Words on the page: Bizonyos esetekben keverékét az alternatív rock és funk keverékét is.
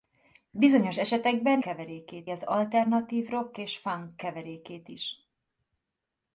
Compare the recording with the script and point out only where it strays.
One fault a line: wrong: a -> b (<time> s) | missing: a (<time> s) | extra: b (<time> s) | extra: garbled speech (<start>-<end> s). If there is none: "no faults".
no faults